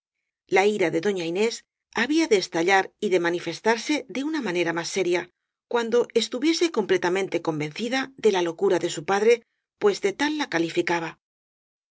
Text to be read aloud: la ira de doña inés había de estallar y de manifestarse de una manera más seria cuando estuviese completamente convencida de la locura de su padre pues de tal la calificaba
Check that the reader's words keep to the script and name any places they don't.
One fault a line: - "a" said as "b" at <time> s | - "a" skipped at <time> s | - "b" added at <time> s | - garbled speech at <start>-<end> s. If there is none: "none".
none